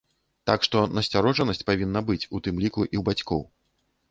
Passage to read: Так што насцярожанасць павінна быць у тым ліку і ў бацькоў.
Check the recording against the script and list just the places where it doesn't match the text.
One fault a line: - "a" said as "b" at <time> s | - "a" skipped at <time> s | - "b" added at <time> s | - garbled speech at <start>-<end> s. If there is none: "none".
none